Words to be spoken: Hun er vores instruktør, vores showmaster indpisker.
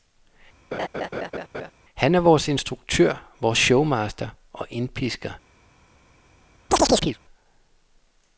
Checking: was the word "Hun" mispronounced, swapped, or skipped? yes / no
yes